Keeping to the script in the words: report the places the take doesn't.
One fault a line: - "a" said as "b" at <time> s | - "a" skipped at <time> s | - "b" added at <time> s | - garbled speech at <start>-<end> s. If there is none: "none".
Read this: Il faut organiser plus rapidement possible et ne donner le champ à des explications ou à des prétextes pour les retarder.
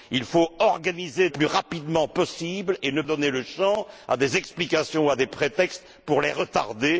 none